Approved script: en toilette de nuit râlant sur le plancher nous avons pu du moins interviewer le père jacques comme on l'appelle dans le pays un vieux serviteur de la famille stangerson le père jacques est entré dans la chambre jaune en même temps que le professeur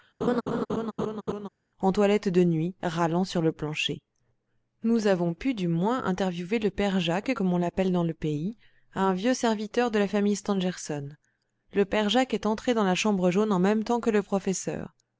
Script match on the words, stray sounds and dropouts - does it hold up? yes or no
no